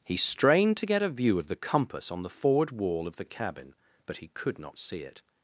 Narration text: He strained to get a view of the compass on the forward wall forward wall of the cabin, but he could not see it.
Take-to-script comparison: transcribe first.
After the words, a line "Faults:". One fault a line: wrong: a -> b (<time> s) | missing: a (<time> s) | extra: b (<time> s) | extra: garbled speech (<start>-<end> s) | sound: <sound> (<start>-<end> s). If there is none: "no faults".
He strained to get a view of the compass on the forward wall of the cabin, but he could not see it.
Faults:
missing: forward wall (3.1 s)